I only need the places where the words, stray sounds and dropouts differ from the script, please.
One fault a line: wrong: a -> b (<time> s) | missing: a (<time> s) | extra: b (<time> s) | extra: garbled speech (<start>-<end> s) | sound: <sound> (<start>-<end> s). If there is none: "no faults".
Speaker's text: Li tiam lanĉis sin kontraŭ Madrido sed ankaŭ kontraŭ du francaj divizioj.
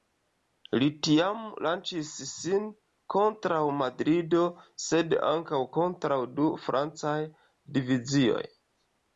no faults